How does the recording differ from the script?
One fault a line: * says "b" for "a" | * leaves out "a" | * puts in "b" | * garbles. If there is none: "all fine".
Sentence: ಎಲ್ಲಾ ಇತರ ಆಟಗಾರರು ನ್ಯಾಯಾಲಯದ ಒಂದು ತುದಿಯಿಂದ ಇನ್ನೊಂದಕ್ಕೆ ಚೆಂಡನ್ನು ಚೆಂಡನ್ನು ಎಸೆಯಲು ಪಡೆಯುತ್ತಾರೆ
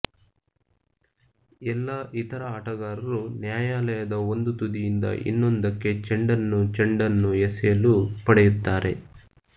all fine